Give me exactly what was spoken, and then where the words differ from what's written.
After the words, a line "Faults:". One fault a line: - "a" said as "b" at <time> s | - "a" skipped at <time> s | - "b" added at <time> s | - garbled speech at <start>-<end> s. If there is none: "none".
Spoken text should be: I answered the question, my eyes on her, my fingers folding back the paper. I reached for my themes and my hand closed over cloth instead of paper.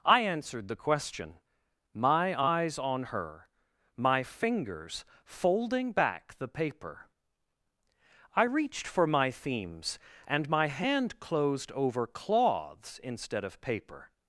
I answered the question, my eyes on her, my fingers folding back the paper. I reached for my themes and my hand closed over cloths instead of paper.
Faults:
- "cloth" said as "cloths" at 12.1 s